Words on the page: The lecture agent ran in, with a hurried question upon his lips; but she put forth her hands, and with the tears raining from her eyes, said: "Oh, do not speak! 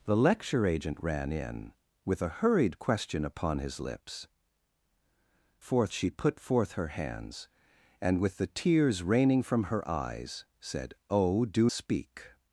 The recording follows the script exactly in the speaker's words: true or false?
false